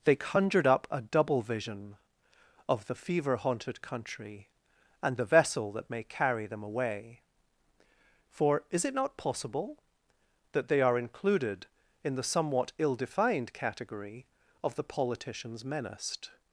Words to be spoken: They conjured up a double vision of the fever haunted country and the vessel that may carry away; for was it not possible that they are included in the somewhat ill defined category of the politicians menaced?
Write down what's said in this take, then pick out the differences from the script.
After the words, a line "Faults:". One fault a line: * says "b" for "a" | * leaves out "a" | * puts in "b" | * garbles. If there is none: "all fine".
They conjured up a double vision of the fever haunted country and the vessel that may carry them away; for is it not possible that they are included in the somewhat ill defined category of the politicians menaced?
Faults:
* puts in "them"
* says "is" for "was"